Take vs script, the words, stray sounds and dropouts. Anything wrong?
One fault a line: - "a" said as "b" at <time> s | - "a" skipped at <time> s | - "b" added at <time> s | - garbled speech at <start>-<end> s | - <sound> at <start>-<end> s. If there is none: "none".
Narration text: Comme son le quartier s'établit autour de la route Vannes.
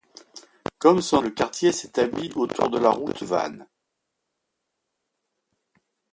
none